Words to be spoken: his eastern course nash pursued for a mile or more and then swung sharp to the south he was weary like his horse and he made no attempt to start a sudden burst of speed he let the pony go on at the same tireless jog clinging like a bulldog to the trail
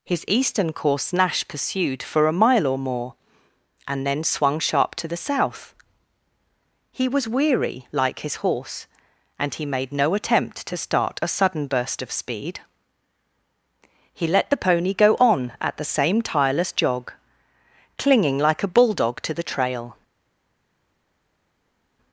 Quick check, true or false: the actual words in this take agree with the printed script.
true